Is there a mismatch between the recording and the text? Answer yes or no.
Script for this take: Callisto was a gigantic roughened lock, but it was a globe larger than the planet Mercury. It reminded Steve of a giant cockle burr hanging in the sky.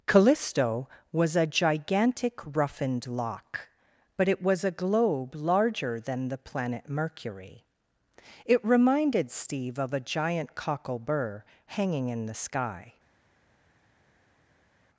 no